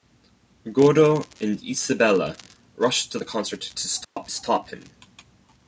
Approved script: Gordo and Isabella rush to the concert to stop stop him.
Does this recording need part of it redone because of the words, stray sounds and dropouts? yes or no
yes